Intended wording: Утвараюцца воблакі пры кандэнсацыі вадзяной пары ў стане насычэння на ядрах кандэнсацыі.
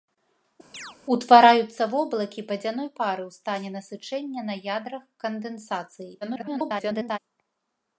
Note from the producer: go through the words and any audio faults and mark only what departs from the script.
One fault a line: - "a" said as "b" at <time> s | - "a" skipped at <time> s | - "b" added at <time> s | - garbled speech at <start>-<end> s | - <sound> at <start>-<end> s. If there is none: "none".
- chirp at 0.7-1.0 s
- "пры кандэнсацыі" skipped at 2.4 s
- garbled speech at 6.2-7.2 s